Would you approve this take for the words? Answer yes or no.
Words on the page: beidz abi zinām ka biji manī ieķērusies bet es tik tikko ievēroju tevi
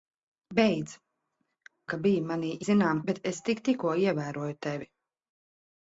no